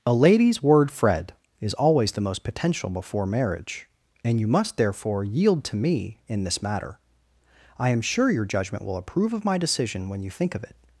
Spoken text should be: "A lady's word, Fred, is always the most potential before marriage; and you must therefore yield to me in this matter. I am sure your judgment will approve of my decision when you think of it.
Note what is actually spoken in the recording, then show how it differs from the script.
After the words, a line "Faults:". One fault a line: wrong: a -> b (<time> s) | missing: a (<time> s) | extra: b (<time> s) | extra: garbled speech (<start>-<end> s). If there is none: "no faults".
"A lady's word, Fred, is always the most potential before marriage; and you must therefore yield to me in this matter. I am sure your judgment will approve of my decision when you think of it.
Faults:
no faults